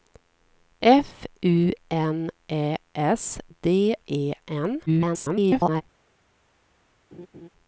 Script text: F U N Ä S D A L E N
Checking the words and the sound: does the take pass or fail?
fail